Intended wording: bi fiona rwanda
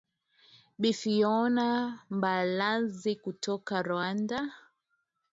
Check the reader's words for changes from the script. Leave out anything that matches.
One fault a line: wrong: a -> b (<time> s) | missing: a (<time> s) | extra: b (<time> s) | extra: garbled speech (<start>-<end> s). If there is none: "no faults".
extra: mbalazi kutoka (2.2 s)